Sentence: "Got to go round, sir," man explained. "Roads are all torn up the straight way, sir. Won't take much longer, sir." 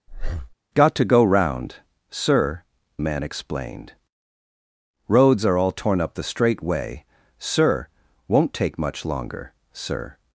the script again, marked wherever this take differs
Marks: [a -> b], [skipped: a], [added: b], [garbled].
"Got to go round, sir," man explained. "Roads are all torn up the straight way, sir. Won't take much longer, sir."